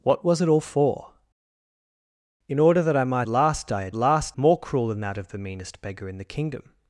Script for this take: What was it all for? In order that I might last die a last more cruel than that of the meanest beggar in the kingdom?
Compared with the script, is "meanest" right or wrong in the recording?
right